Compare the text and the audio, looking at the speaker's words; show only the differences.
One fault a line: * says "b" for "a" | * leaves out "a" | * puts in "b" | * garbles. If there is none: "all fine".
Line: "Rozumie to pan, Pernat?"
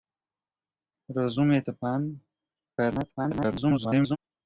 * garbles